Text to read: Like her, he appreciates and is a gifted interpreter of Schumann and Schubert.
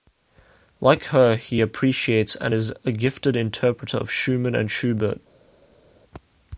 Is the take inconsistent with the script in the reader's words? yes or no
no